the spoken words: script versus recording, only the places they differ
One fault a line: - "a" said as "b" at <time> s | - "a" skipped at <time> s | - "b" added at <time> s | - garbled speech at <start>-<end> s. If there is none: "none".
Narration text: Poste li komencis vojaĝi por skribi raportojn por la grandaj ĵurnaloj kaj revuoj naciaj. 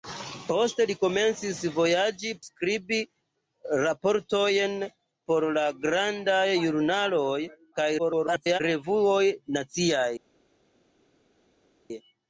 - "por" skipped at 2.3 s
- garbled speech at 8.0-8.6 s